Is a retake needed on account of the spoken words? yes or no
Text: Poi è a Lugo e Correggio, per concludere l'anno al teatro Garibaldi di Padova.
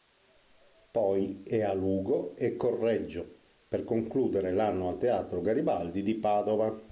no